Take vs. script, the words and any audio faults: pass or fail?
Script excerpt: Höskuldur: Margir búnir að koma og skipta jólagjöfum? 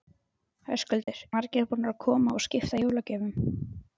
fail